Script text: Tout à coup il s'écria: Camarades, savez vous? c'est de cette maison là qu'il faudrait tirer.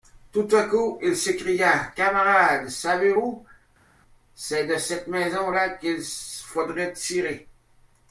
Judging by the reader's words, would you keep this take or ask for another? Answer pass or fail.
pass